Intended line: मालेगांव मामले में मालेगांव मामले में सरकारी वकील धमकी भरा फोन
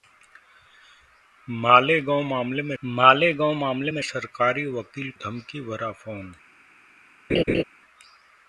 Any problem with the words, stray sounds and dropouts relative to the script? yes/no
yes